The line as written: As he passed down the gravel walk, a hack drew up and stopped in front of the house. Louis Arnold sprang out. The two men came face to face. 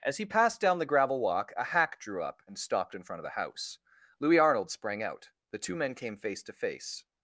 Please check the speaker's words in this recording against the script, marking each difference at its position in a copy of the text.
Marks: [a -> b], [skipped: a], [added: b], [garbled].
As he passed down the gravel walk, a hack drew up and stopped in front of the house. Louis Arnold sprang out. The two men came face to face.